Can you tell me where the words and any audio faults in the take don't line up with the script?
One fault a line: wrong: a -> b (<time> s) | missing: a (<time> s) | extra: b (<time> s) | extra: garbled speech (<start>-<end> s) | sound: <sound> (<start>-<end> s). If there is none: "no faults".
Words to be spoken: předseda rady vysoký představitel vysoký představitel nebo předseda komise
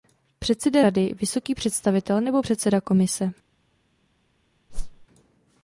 missing: vysoký představitel (2.2 s)
sound: whoosh (4.7-5.1 s)